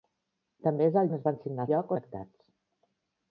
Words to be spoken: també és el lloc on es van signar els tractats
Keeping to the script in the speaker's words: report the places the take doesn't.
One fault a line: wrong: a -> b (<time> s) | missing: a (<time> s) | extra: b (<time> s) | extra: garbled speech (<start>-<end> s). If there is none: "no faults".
missing: lloc (1.1 s)
wrong: els -> lloc (1.7 s)